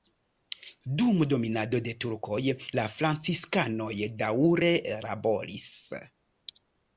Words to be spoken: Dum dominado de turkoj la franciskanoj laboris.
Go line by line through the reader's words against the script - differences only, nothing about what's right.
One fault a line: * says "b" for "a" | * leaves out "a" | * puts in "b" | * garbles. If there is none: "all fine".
* puts in "daŭre"